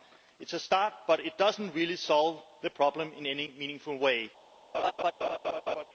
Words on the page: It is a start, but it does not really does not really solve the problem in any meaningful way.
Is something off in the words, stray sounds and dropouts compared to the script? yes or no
yes